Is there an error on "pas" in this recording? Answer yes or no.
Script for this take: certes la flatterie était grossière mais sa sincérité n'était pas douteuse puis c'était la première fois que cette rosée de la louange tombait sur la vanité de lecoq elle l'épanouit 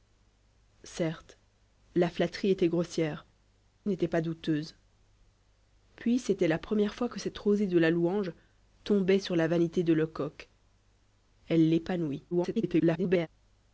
no